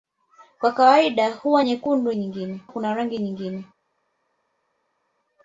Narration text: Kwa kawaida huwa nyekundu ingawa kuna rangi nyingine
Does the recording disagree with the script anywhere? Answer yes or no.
yes